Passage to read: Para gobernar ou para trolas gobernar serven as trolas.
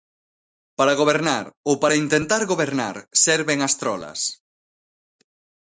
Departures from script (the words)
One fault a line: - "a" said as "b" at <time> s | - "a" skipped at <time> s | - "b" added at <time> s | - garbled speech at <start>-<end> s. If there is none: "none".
- "trolas" said as "intentar" at 2.0 s